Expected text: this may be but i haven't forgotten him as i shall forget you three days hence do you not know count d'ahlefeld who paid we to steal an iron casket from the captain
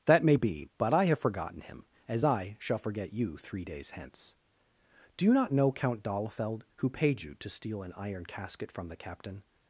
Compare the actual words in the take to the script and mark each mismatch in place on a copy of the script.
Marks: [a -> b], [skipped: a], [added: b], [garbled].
[this -> that] may be but i [haven't -> have] forgotten him as i shall forget you three days hence do you not know count d'ahlefeld who paid [we -> you] to steal an iron casket from the captain